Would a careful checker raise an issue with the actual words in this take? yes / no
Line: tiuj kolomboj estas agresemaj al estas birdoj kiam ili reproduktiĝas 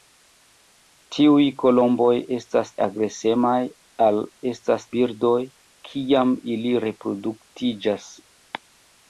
no